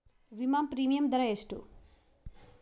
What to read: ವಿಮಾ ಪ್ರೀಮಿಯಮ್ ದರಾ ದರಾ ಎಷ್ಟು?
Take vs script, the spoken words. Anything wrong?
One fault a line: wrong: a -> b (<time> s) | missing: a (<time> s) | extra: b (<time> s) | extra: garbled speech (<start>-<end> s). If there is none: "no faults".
missing: ದರಾ (1.2 s)